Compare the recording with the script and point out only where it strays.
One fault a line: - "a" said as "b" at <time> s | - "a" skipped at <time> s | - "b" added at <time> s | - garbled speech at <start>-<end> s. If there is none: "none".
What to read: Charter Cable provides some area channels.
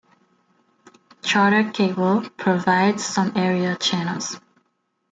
none